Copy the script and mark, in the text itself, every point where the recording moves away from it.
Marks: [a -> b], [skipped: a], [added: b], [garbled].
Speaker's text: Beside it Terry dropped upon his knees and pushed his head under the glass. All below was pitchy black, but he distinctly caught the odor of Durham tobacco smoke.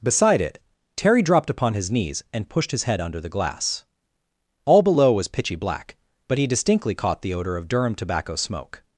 Beside it Terry dropped upon his knees and pushed his head under the glass. All below was pitchy black, but he distinctly caught the odor of Durham tobacco smoke.